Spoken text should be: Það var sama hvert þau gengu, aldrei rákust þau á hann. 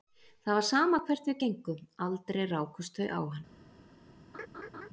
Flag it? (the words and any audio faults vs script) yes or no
yes